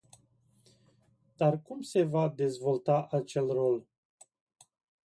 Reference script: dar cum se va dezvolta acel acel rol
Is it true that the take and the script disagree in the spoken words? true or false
true